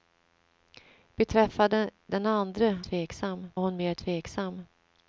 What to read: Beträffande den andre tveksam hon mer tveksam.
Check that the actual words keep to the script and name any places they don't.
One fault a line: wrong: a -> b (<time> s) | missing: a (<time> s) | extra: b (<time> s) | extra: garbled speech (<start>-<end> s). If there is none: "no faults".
no faults